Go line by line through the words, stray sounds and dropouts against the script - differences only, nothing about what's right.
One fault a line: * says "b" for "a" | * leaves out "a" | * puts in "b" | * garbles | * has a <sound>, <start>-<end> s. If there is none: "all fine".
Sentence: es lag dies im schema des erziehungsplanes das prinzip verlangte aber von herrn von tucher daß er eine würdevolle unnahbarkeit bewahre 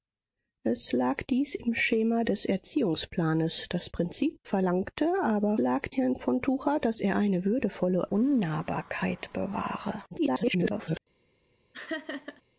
* says "lag" for "von"
* garbles
* has a laugh, 11.7-12.4 s